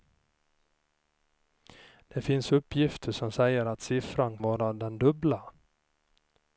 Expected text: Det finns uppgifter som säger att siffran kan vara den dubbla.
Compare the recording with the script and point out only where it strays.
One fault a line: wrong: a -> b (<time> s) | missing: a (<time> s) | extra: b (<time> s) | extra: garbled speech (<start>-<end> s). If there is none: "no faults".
missing: kan (4.4 s)